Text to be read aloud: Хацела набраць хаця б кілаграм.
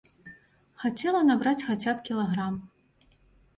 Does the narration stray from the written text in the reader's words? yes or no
no